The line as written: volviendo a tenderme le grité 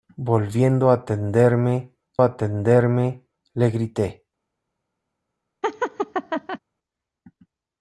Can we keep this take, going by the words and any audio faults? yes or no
no